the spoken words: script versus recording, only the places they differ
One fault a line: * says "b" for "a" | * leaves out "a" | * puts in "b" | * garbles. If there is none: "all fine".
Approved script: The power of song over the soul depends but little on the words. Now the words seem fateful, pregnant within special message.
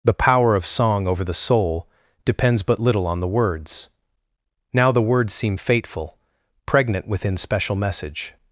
all fine